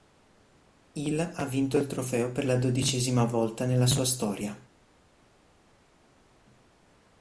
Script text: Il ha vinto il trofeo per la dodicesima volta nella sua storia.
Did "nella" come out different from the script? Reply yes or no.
no